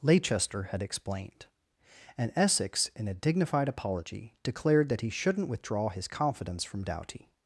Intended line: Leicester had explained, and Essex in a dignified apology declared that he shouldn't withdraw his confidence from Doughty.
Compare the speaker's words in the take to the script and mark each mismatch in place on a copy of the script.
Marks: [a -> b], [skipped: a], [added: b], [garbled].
Leicester had explained, and Essex in a dignified apology declared that he shouldn't withdraw his confidence from Doughty.